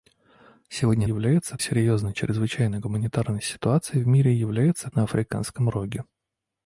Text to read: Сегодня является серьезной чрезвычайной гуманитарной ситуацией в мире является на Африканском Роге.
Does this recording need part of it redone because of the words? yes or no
no